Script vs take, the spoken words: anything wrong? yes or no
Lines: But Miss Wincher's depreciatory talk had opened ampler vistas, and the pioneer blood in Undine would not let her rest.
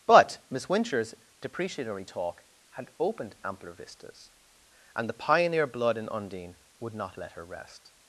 no